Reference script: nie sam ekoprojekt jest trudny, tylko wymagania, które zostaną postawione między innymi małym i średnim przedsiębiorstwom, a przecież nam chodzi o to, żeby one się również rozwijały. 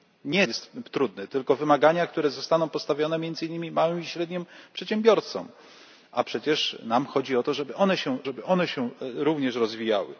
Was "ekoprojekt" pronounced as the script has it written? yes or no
no